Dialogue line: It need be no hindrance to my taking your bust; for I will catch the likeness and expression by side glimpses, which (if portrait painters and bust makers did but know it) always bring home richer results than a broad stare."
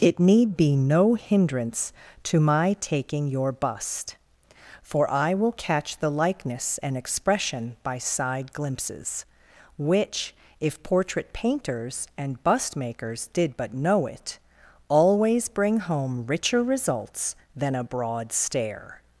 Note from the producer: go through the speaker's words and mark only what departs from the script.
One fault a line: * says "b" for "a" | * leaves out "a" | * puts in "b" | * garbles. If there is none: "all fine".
all fine